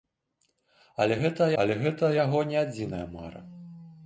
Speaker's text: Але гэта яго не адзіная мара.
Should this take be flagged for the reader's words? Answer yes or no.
yes